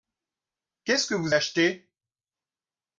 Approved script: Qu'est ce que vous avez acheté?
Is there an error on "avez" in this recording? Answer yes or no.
yes